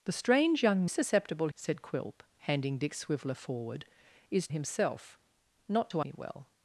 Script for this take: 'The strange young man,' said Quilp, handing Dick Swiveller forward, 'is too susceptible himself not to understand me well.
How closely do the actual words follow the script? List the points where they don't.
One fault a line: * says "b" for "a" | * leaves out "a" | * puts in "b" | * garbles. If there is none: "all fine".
* says "susceptible" for "man"
* leaves out "too susceptible"
* leaves out "understand"